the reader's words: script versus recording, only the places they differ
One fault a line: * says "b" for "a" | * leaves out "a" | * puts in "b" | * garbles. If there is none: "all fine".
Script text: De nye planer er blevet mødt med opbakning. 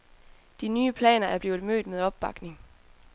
all fine